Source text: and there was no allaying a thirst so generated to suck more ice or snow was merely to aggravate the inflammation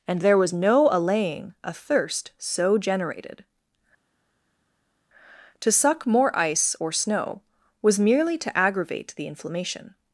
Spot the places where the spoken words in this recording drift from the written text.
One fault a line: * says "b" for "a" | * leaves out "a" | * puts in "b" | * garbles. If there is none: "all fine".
all fine